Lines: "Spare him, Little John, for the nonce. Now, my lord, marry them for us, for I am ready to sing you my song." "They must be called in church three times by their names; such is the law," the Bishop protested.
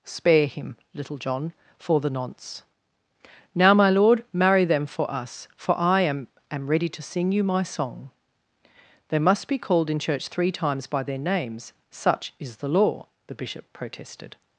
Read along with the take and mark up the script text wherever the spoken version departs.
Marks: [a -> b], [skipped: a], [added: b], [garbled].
"Spare him, Little John, for the nonce. Now, my lord, marry them for us, for I am [added: am] ready to sing you my song." "They must be called in church three times by their names; such is the law," the Bishop protested.